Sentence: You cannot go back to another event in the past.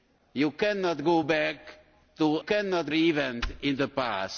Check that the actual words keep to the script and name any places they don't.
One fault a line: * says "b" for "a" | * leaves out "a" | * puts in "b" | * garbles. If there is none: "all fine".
* says "cannot" for "another"